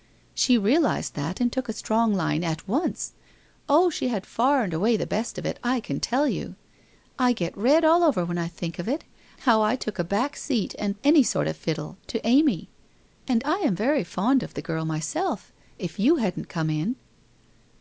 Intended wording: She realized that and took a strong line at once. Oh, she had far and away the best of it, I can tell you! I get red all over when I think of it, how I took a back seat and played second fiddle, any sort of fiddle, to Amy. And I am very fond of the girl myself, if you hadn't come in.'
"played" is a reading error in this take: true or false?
true